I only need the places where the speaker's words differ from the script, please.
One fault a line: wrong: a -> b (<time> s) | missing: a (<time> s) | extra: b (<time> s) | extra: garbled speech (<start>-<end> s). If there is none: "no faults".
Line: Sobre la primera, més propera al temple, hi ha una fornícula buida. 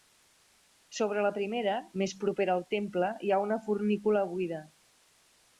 no faults